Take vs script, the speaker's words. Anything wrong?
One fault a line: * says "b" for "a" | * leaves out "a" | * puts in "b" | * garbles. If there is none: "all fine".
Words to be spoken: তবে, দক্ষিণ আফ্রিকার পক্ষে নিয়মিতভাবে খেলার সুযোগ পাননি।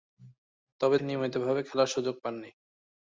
* leaves out "দক্ষিণ আফ্রিকার পক্ষে"